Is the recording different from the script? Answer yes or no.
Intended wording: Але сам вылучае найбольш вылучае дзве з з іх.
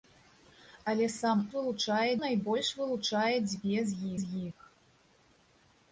no